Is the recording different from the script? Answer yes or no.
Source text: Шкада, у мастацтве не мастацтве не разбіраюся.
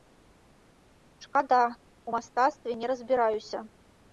yes